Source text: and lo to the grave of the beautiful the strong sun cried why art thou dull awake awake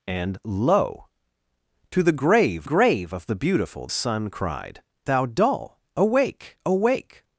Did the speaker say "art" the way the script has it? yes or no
no